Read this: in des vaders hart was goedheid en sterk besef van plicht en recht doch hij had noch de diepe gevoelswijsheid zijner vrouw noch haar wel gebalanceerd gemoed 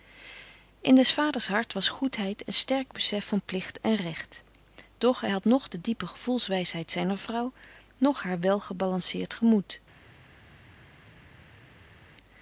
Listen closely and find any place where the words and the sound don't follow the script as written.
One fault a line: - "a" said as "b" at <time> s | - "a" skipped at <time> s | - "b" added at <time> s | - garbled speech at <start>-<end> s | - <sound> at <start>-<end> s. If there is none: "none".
none